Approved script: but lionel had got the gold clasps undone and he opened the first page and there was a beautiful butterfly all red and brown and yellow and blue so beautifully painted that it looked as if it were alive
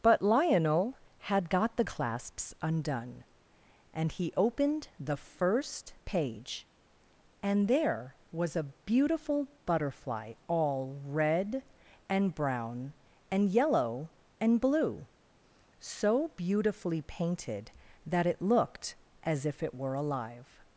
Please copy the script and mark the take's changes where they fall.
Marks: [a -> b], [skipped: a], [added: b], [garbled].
but lionel had got the [skipped: gold] clasps undone and he opened the first page and there was a beautiful butterfly all red and brown and yellow and blue so beautifully painted that it looked as if it were alive